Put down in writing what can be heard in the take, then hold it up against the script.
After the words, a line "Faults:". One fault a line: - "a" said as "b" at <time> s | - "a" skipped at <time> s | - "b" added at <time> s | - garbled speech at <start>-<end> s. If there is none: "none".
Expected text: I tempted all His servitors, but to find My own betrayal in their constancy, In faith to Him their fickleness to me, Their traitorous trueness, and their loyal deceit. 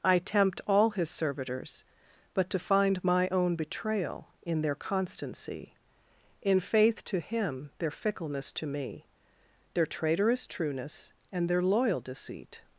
I tempt all His servitors, but to find My own betrayal in their constancy, In faith to Him their fickleness to me, Their traitorous trueness, and their loyal deceit.
Faults:
- "tempted" said as "tempt" at 0.2 s